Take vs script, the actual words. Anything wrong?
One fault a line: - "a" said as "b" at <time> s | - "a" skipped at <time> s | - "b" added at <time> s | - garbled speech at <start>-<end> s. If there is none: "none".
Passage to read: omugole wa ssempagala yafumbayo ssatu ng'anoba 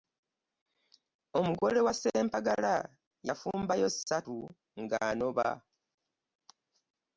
none